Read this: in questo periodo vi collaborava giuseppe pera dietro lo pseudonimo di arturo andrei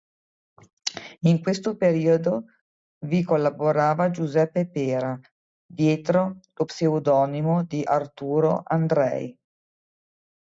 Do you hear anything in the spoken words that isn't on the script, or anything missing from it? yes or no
no